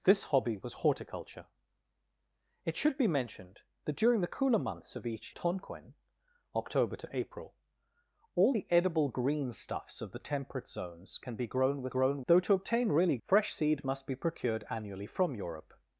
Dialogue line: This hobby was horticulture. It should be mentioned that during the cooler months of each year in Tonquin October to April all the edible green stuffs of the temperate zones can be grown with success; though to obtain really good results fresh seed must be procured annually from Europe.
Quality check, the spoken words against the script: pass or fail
fail